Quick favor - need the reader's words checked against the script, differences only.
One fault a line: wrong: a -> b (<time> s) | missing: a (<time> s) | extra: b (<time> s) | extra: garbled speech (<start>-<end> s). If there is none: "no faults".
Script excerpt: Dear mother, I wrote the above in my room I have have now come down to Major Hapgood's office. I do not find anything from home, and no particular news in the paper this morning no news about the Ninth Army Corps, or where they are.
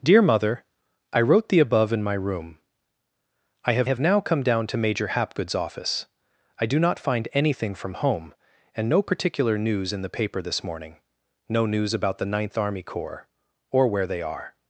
no faults